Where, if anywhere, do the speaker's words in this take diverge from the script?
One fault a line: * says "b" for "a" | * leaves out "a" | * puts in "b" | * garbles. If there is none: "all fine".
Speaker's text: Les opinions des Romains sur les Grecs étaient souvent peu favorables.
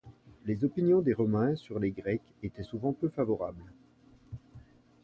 all fine